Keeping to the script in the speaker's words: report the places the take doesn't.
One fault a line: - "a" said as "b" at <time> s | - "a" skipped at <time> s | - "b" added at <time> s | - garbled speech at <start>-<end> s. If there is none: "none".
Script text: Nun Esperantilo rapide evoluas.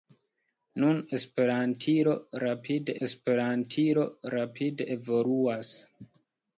- "Esperantilo rapide" added at 3.1 s